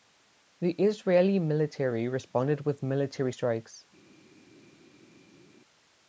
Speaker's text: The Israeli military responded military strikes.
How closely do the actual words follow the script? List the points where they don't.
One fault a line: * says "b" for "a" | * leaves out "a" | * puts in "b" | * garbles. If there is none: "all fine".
* puts in "with"